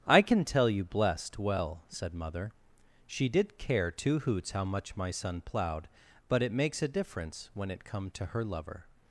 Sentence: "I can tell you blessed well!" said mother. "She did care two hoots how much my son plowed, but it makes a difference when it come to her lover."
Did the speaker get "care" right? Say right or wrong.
right